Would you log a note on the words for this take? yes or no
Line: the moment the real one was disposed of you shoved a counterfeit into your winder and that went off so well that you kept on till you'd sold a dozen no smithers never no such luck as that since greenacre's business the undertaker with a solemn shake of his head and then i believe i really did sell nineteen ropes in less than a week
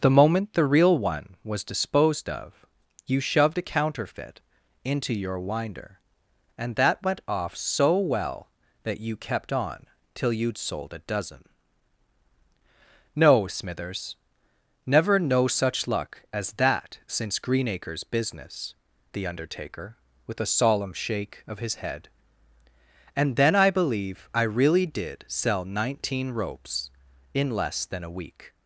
no